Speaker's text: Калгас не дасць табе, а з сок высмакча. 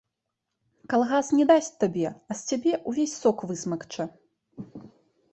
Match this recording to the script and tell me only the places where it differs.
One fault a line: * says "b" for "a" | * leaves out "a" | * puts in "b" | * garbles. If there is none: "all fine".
* puts in "цябе ўвесь"